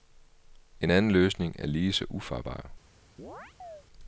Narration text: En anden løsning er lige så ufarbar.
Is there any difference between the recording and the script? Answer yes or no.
no